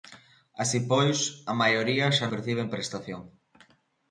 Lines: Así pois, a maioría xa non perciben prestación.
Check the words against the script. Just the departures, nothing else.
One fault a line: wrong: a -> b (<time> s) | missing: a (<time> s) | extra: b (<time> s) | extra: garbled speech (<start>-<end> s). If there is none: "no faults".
missing: non (2.2 s)